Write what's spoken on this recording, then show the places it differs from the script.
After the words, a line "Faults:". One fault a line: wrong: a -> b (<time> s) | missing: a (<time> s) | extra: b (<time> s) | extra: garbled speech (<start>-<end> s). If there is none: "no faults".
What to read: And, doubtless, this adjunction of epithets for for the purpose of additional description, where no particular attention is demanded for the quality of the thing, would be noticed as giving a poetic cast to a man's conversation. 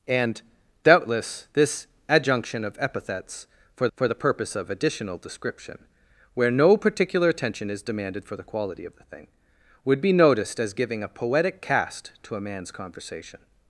And, doubtless, this adjunction of epithets for for the purpose of additional description, where no particular attention is demanded for the quality of the thing, would be noticed as giving a poetic cast to a man's conversation.
Faults:
no faults